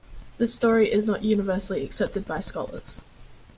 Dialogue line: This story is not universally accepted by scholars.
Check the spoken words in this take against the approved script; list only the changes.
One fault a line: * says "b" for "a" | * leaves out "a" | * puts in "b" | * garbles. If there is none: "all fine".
all fine